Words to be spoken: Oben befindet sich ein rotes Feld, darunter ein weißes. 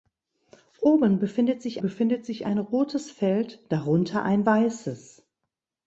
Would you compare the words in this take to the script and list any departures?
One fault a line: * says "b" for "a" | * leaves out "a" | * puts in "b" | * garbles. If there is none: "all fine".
* puts in "befindet sich"